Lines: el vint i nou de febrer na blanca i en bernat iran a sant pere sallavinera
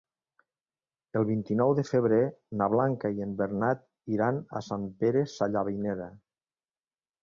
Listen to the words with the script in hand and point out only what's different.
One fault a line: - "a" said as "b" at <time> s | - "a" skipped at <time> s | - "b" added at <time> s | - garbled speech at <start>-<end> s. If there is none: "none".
none